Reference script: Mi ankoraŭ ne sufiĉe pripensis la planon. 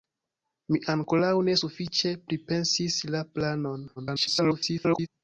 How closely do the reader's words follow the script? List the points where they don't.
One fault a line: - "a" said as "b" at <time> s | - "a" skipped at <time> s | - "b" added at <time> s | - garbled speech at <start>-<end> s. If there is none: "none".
- garbled speech at 4.0-5.1 s